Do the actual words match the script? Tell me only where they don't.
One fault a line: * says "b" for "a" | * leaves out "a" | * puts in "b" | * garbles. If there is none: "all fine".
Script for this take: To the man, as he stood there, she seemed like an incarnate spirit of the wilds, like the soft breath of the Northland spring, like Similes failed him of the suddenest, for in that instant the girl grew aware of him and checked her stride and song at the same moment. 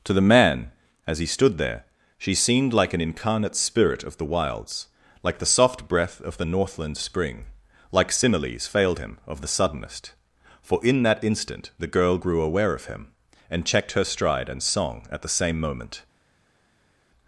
all fine